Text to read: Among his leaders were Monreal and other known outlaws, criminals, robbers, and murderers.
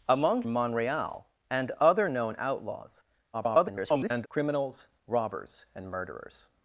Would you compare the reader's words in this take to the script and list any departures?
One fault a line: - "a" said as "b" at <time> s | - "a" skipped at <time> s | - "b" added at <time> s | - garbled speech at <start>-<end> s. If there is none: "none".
- "his leaders were" skipped at 0.4 s
- garbled speech at 3.3-4.3 s